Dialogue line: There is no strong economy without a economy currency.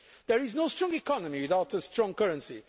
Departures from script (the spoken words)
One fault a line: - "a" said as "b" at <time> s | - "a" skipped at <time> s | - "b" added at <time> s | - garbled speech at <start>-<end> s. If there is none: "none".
- "economy" said as "strong" at 1.8 s